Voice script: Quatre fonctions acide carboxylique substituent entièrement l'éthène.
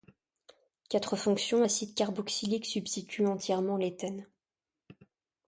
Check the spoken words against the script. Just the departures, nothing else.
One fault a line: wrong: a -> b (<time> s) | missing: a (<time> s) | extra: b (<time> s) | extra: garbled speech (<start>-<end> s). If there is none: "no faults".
no faults